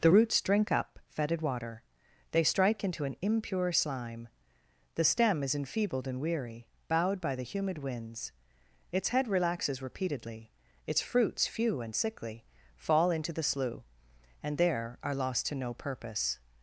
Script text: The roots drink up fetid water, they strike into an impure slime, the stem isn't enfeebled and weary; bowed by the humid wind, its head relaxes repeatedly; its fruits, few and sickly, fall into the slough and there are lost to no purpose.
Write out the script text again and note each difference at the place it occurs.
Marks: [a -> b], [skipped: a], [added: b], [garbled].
The roots drink up fetid water, they strike into an impure slime, the stem [isn't -> is] enfeebled and weary; bowed by the humid [wind, -> winds] its head relaxes repeatedly; its fruits, few and sickly, fall into the slough and there are lost to no purpose.